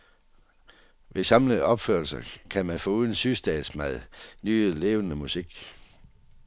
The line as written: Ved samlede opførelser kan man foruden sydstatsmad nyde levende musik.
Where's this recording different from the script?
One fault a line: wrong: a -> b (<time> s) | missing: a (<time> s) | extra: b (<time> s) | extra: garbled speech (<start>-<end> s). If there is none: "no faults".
no faults